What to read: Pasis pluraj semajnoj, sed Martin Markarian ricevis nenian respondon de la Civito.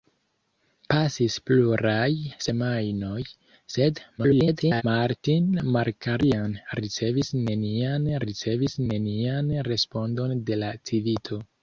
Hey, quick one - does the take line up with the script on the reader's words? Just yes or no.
no